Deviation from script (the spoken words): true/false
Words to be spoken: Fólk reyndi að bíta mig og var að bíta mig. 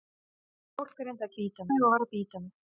false